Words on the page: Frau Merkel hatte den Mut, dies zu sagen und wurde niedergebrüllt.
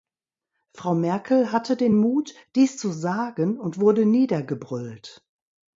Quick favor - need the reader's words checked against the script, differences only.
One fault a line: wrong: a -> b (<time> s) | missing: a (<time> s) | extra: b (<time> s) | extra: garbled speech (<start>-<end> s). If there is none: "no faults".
no faults